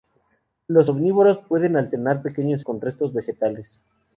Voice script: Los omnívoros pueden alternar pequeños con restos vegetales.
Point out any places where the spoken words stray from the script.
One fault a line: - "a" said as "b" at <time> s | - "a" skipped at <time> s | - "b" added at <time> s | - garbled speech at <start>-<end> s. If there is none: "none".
none